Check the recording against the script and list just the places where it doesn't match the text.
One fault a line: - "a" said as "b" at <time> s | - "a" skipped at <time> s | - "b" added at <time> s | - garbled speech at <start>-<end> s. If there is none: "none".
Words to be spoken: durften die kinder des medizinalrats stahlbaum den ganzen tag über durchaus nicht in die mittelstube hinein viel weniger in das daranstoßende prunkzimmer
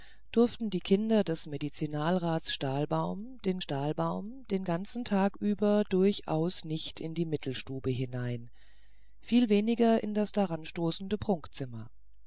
- "stahlbaum den" added at 3.6 s